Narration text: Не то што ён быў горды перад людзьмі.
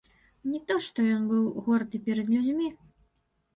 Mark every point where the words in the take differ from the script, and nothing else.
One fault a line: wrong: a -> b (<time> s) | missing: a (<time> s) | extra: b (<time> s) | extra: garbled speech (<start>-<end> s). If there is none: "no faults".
no faults